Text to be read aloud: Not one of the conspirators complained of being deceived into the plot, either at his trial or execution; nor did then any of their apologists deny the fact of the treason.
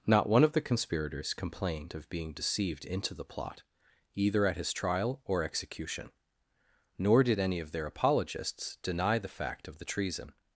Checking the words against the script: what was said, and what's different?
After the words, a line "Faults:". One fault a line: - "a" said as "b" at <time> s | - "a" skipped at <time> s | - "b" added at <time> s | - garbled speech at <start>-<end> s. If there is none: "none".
Not one of the conspirators complained of being deceived into the plot, either at his trial or execution; nor did any of their apologists deny the fact of the treason.
Faults:
- "then" skipped at 7.4 s